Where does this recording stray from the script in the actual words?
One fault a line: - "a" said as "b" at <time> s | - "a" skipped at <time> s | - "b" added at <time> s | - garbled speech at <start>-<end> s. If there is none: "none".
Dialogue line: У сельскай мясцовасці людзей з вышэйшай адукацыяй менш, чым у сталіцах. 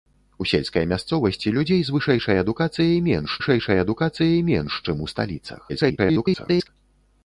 - "вышэйшай адукацыяй менш" added at 3.4 s
- garbled speech at 5.7-6.7 s